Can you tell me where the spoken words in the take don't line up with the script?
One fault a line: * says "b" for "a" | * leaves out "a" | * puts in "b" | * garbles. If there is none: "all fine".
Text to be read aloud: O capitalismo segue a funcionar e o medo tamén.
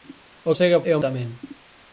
* leaves out "capitalismo"
* leaves out "funcionar"
* leaves out "medo"